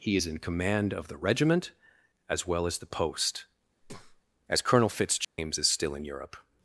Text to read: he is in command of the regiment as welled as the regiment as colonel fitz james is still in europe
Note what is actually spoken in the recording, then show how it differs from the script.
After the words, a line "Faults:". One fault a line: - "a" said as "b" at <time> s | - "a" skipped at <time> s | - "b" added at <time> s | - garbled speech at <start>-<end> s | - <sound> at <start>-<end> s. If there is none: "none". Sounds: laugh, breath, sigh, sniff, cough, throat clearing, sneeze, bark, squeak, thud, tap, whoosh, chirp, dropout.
he is in command of the regiment as well as the post as colonel fitz james is still in europe
Faults:
- "welled" said as "well" at 2.5 s
- "regiment" said as "post" at 2.9 s
- breath at 3.8-4.2 s
- dropout at 5.2-5.4 s